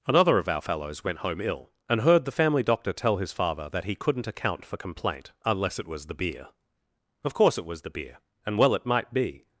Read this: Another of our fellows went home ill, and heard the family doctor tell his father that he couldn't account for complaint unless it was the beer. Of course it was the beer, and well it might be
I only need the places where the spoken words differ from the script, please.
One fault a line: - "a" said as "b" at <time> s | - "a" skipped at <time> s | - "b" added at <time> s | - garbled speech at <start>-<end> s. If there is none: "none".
none